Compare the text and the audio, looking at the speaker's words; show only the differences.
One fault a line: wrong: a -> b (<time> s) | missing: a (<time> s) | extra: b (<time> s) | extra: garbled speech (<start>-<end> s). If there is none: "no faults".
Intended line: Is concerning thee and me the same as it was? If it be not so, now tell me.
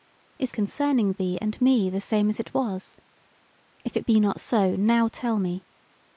no faults